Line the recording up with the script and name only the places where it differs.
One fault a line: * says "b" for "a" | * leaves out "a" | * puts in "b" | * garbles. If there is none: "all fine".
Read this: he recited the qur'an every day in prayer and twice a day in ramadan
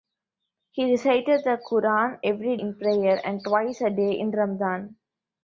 * leaves out "day"